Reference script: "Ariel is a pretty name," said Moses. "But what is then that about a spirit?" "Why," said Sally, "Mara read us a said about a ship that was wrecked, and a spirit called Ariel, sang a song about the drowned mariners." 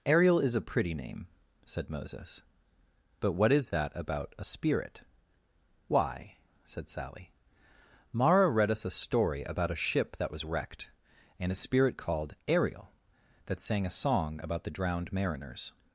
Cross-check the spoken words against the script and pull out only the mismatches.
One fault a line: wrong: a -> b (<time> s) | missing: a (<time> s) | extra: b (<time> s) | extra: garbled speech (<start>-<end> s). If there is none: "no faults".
missing: then (3.7 s)
wrong: said -> story (8.9 s)
extra: that (13.5 s)